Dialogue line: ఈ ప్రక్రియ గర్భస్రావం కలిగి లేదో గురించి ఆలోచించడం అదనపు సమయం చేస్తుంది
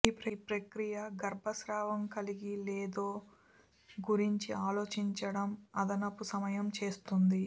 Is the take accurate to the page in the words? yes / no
yes